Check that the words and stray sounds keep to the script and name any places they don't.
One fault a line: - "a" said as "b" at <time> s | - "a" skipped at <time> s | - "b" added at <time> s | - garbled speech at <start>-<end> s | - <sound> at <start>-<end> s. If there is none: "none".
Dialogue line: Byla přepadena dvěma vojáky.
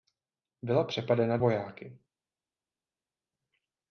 - "dvěma" skipped at 1.4 s